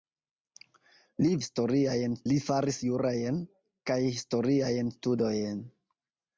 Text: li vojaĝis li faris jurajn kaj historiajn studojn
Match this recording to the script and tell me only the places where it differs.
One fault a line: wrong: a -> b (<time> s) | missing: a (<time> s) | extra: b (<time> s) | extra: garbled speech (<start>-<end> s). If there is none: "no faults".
wrong: vojaĝis -> historiajn (1.4 s)